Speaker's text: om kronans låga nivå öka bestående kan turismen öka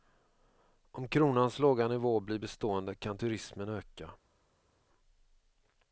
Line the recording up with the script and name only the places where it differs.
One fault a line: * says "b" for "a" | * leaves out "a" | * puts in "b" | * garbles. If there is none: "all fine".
* says "blir" for "öka"